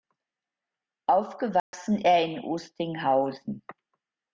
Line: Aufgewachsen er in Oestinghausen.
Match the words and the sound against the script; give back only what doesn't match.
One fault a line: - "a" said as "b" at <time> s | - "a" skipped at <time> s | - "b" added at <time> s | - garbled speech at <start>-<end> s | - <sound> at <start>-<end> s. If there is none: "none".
- dropout at 1.6-1.7 s